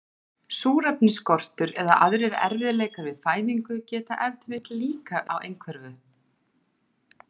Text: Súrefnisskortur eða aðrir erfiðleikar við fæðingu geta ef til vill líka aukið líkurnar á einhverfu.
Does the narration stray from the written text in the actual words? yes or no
yes